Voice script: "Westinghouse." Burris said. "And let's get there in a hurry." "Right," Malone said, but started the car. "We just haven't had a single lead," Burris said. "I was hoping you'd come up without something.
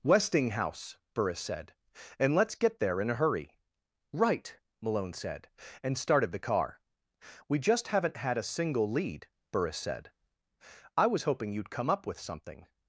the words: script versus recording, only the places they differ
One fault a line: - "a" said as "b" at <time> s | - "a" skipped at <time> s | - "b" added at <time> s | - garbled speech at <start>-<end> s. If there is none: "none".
- "but" said as "and" at 5.8 s
- "without" said as "with" at 12.1 s